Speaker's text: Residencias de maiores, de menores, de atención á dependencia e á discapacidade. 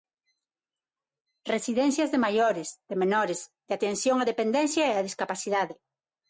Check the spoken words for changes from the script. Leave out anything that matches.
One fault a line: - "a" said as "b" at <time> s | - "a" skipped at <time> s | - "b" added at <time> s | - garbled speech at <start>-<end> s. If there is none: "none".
none